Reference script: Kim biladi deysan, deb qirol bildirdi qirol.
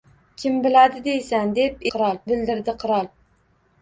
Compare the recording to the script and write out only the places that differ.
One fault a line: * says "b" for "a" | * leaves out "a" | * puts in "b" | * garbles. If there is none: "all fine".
all fine